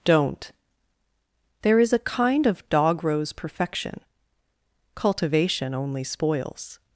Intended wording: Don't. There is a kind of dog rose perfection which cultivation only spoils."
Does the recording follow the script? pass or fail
fail